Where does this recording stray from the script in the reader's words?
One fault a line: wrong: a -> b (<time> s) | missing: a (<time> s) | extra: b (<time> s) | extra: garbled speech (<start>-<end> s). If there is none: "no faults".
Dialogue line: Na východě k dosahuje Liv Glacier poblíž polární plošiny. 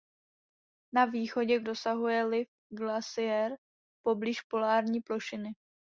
no faults